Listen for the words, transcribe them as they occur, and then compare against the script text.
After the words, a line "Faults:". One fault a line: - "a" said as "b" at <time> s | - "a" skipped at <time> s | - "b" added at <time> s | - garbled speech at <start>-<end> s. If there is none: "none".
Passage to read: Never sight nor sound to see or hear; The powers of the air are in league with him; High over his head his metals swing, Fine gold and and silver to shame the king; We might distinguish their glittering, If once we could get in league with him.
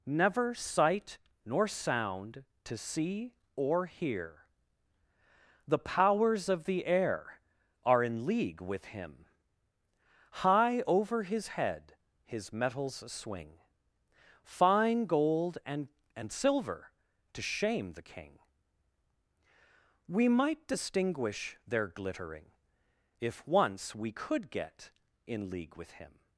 Never sight nor sound to see or hear; The powers of the air are in league with him; High over his head his metals swing, Fine gold and and silver to shame the king; We might distinguish their glittering, If once we could get in league with him.
Faults:
none